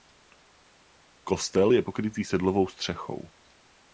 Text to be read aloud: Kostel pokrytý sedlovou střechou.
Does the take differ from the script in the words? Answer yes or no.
yes